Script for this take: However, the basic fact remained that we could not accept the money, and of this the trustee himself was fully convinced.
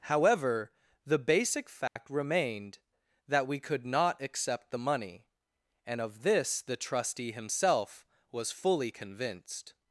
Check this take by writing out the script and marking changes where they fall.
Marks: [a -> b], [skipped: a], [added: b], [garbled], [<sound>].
However, the basic fact [dropout] remained that we could not accept the money, and of this the trustee himself was fully convinced.